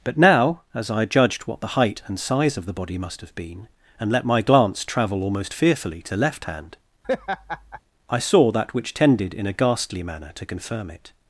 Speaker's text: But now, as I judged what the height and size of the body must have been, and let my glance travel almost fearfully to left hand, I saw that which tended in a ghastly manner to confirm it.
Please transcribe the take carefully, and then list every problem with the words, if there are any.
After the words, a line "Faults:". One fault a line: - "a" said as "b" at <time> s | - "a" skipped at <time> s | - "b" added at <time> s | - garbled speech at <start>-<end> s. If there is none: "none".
But now, as I judged what the height and size of the body must have been, and let my glance travel almost fearfully to left hand, I saw that which tended in a ghastly manner to confirm it.
Faults:
none